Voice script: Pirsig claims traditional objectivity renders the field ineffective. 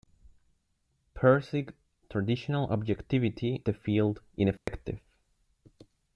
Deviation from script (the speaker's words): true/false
true